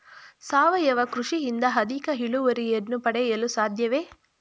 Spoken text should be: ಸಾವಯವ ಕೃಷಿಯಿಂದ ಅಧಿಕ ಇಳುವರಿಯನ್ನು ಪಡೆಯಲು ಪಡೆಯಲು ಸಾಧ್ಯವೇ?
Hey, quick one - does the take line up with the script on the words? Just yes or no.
no